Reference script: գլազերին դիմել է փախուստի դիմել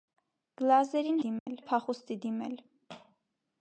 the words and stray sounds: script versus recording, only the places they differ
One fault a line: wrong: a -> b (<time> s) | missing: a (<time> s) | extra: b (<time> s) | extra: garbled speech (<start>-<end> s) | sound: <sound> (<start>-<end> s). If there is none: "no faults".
sound: dropout (1.4-1.5 s)